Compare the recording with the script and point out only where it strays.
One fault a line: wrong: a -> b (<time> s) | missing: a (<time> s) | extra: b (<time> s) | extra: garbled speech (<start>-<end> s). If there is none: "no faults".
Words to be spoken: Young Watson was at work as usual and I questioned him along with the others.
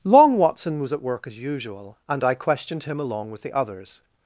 wrong: Young -> Long (0.0 s)